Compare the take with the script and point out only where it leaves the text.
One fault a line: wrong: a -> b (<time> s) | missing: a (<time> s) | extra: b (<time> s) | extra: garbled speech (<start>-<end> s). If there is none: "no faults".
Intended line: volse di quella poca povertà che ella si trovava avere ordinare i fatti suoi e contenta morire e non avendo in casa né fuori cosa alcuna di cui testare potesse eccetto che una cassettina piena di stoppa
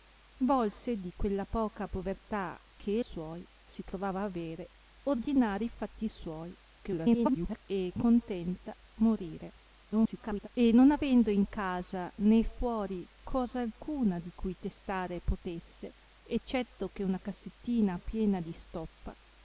wrong: ella -> suoi (3.0 s)
extra: garbled speech (6.8-7.6 s)
extra: garbled speech (9.9-10.5 s)